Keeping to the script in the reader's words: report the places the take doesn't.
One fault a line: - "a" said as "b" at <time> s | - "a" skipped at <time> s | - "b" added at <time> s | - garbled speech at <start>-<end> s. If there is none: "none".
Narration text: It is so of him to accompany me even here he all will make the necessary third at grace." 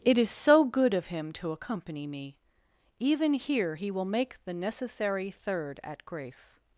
- "good" added at 0.6 s
- "all" skipped at 3.9 s